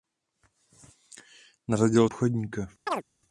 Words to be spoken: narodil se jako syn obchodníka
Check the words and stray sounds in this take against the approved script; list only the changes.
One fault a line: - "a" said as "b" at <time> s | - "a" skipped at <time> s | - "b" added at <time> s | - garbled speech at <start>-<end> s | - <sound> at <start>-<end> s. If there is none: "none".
- "se jako syn" skipped at 2.1 s
- chirp at 2.9-3.0 s